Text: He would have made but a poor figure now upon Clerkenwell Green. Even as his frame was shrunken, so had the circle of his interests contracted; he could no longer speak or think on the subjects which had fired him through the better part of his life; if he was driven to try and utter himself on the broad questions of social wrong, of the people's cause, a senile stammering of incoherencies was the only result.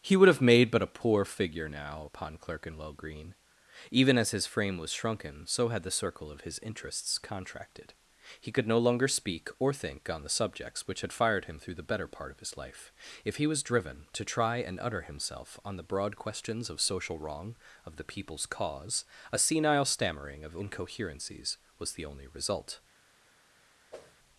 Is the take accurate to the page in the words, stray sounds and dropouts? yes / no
no